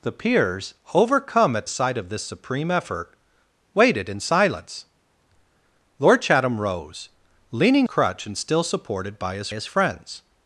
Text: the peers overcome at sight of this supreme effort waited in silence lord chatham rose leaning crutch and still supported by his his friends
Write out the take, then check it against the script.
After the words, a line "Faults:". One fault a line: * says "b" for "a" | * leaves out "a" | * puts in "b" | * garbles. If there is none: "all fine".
the peers overcome at sight of this supreme effort waited in silence lord chatham rose leaning crutch and still supported by his his friends
Faults:
all fine